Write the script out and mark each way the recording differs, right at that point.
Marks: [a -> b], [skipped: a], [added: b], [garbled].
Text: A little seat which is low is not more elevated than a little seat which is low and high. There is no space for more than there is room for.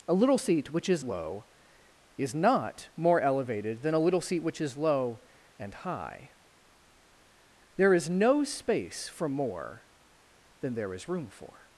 A little seat which is low is not more elevated than a little seat which is low and high. There is no space for more than there is room for.